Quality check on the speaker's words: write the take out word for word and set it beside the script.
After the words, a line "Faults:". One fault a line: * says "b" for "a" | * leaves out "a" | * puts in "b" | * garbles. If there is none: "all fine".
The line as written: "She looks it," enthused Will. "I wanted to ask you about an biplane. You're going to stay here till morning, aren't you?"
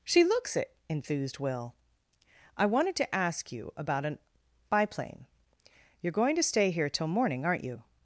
"She looks it," enthused Will. "I wanted to ask you about an biplane. You're going to stay here till morning, aren't you?"
Faults:
all fine